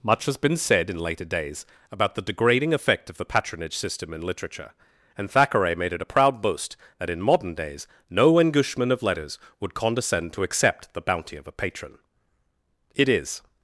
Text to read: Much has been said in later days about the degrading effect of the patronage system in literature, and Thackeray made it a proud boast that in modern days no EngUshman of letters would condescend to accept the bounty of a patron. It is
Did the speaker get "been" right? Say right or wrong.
right